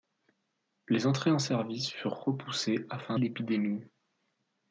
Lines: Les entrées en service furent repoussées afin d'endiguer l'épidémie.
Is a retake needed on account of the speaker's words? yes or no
yes